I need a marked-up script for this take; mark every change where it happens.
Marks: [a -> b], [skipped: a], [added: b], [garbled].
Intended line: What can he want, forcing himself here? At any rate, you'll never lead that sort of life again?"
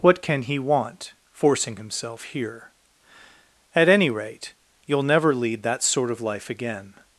What can he want, forcing himself here? At any rate, you'll never lead that sort of life again?"